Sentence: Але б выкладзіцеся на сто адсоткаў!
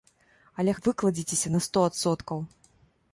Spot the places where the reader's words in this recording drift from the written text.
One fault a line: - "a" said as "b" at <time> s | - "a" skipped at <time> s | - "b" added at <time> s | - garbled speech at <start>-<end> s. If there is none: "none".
none